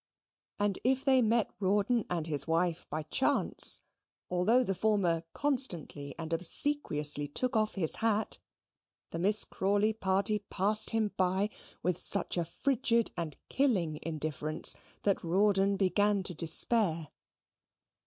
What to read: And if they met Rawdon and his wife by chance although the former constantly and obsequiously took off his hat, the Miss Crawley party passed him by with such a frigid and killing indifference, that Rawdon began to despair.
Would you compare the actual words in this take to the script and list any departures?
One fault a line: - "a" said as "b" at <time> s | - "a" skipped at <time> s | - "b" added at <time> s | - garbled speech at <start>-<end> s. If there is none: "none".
none